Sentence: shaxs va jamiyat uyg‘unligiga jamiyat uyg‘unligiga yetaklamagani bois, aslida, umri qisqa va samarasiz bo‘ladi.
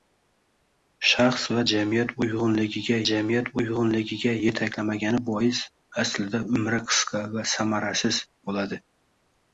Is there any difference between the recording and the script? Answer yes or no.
no